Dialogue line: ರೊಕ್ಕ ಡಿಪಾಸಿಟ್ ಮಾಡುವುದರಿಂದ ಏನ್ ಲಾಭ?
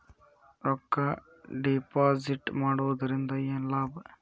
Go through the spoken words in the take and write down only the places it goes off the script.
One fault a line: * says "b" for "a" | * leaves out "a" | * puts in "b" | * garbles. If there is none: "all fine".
all fine